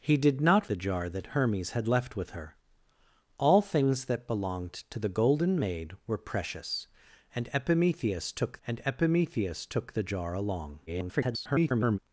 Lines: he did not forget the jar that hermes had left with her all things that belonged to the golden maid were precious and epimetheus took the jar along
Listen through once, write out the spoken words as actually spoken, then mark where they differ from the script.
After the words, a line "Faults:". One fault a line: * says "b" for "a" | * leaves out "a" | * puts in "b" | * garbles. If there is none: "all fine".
he did not the jar that hermes had left with her all things that belonged to the golden maid were precious and epimetheus took and epimetheus took the jar along [garbled]
Faults:
* leaves out "forget"
* puts in "and epimetheus took"
* garbles